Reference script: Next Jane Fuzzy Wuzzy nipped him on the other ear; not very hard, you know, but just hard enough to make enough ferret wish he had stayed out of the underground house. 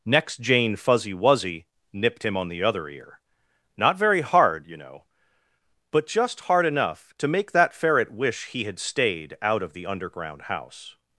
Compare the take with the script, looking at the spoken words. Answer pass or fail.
fail